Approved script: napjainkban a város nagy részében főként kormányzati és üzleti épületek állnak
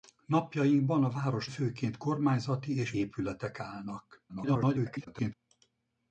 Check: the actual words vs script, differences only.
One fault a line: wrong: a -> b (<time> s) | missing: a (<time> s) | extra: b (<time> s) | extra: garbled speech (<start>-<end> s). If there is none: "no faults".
missing: nagy részében (1.5 s)
missing: üzleti (2.9 s)
extra: garbled speech (4.3-5.3 s)